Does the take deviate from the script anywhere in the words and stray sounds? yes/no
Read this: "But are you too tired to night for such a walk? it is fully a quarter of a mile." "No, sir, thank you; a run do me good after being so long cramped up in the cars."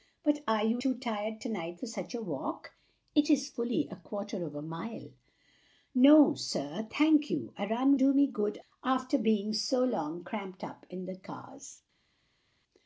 no